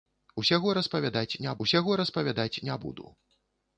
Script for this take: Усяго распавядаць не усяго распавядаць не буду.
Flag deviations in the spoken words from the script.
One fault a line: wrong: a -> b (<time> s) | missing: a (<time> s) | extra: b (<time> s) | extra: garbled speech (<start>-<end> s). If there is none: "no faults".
no faults